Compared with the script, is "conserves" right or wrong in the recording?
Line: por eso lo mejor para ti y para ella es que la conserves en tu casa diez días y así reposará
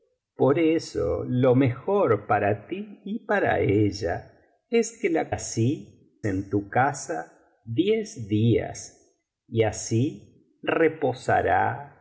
wrong